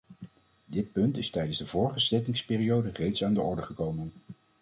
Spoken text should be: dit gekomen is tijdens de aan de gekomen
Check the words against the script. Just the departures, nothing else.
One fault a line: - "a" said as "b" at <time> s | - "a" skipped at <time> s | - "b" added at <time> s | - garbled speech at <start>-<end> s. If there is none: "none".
- "gekomen" said as "punt" at 0.9 s
- "vorige zittingsperiode reeds" added at 1.7 s
- "orde" added at 3.4 s